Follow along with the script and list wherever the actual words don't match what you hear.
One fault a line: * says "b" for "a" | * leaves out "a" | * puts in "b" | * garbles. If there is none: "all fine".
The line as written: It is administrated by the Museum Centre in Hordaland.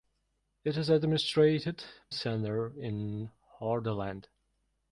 * leaves out "by the Museum"